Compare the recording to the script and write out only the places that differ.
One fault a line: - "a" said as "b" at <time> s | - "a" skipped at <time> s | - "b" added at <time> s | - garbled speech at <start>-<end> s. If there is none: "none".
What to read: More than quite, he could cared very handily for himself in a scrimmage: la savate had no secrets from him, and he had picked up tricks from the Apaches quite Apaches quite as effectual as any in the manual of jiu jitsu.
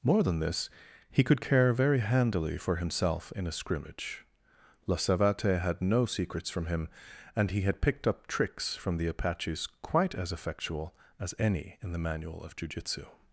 - "quite" said as "this" at 0.4 s
- "cared" said as "care" at 1.4 s
- "Apaches quite" skipped at 10.1 s